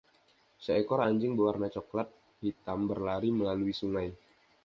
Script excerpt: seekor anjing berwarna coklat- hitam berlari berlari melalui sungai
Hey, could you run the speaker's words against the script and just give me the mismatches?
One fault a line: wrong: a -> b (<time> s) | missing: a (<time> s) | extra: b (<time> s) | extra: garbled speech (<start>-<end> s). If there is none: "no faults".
missing: berlari (3.3 s)